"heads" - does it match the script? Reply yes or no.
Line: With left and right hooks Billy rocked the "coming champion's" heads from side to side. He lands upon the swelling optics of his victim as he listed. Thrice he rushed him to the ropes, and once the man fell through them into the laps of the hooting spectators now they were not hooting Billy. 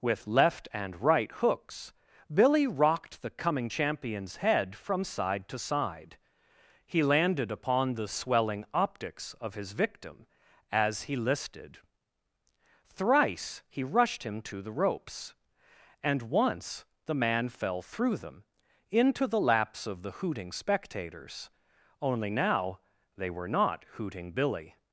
no